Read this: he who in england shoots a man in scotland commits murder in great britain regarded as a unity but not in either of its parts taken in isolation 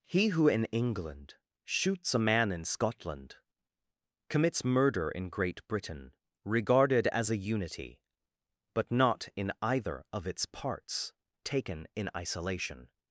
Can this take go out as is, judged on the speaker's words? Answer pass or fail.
pass